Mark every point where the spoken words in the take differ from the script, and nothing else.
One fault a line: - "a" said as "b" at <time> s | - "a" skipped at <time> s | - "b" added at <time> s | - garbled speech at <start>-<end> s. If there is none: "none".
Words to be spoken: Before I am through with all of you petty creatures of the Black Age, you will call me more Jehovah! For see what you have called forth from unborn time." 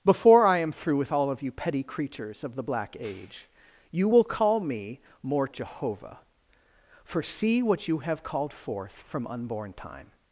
none